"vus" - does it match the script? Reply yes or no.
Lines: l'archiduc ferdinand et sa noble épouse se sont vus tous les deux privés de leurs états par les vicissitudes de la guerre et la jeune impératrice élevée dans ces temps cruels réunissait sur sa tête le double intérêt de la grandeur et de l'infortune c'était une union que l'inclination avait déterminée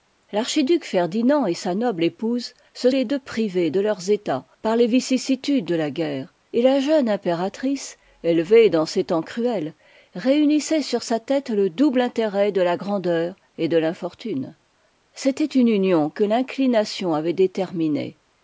no